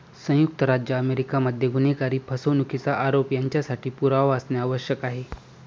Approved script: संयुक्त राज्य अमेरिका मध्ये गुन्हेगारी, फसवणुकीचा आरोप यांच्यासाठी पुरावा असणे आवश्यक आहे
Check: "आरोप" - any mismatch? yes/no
no